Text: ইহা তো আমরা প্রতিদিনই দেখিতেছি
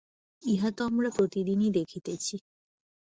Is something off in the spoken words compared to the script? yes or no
no